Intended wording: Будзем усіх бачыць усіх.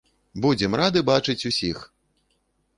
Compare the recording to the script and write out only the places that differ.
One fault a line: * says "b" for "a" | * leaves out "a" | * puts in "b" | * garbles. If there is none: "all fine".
* says "рады" for "усіх"